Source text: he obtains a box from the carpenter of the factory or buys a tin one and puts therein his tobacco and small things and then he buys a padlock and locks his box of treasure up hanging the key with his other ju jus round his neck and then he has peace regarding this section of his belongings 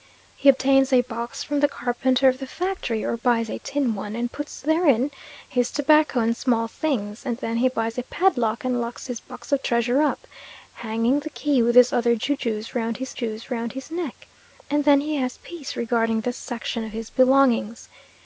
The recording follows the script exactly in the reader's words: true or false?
false